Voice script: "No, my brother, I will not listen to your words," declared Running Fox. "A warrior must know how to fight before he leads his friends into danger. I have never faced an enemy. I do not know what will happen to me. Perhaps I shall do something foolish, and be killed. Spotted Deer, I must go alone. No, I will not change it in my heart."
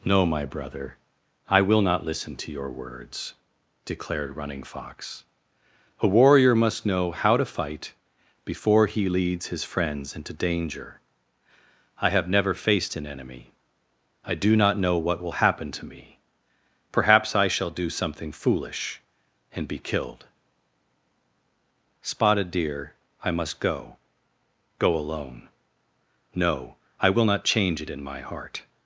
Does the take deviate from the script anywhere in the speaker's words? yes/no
yes